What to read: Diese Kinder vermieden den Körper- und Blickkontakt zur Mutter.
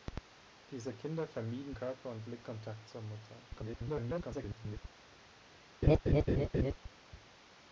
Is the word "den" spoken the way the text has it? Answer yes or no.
no